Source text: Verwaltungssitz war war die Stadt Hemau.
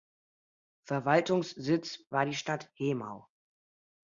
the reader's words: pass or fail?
fail